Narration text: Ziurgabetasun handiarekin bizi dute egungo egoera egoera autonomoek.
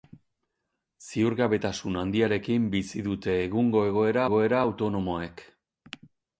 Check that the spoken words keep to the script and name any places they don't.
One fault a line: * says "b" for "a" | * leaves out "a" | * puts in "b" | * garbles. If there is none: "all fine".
all fine